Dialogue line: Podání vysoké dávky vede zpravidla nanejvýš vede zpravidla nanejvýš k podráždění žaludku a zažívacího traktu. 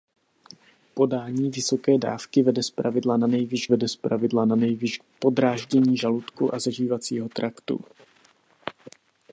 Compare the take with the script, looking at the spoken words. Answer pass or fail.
pass